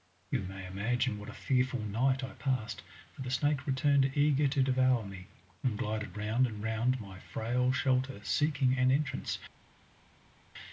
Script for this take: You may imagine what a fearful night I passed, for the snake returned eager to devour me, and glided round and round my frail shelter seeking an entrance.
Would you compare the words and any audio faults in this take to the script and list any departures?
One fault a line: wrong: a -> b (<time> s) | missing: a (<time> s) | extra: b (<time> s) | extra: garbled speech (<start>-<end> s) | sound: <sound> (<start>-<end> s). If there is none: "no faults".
no faults